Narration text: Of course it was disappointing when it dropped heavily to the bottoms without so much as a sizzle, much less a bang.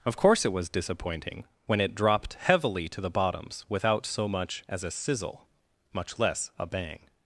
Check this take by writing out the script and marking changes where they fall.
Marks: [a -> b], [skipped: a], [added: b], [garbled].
Of course it was disappointing when it dropped heavily to the bottoms without so much as a sizzle, much less a bang.